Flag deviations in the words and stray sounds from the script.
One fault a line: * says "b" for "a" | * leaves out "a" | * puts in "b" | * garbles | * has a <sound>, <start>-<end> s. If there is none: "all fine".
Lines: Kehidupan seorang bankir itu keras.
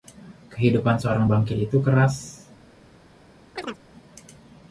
* has a chirp, 3.6-3.8 s